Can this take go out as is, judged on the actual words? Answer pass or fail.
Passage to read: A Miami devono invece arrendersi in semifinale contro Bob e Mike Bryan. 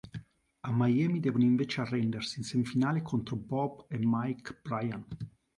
pass